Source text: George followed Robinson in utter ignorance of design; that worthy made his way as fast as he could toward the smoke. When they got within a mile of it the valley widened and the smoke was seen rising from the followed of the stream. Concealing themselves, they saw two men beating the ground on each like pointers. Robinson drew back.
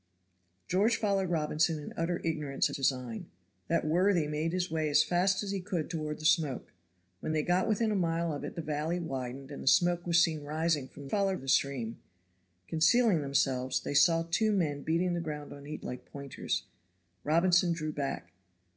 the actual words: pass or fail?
pass